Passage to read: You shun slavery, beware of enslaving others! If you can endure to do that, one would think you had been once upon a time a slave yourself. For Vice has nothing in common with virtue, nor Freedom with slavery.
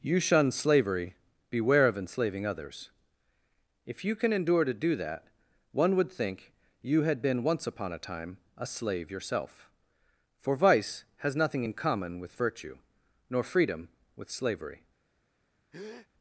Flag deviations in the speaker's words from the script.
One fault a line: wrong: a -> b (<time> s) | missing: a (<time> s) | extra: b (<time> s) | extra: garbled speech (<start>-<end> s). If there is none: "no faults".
no faults